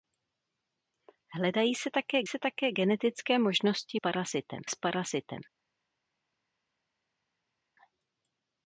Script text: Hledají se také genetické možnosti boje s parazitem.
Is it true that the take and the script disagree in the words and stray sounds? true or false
true